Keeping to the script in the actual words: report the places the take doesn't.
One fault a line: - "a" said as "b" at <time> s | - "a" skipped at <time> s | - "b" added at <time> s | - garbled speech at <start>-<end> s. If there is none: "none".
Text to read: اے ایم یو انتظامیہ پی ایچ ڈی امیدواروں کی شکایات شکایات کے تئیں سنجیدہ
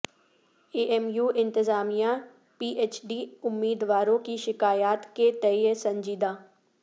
- "شکایات" skipped at 5.0 s